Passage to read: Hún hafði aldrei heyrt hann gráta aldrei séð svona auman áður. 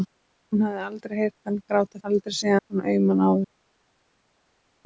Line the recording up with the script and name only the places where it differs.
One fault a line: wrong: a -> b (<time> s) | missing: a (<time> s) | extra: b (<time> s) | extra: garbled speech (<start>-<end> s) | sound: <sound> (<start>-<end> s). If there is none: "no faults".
no faults